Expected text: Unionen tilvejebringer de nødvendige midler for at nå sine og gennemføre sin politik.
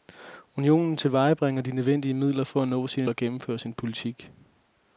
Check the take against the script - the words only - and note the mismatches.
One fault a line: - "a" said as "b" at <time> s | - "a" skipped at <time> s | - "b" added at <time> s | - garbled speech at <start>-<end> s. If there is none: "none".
none